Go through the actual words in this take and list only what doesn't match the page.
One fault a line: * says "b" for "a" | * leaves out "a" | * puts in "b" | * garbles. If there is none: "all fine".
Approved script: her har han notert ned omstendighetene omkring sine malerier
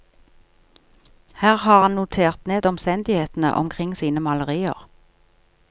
all fine